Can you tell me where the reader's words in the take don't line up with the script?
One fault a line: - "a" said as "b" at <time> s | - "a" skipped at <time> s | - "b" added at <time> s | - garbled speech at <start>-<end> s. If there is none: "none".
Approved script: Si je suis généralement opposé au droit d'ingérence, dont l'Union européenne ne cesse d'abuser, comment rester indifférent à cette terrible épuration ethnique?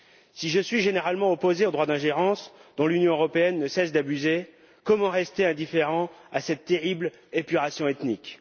none